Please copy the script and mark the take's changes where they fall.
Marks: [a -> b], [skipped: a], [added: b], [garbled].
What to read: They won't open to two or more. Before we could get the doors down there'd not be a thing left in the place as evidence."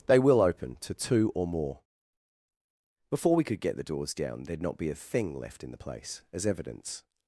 They [won't -> will] open to two or more. Before we could get the doors down there'd not be a thing left in the place as evidence."